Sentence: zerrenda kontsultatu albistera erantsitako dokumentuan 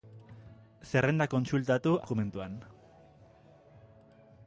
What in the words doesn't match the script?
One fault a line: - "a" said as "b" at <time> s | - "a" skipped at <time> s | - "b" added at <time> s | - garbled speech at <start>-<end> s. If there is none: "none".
- "albistera erantsitako" skipped at 1.9 s